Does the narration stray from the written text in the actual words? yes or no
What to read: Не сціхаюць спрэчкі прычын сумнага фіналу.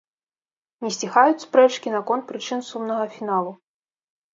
yes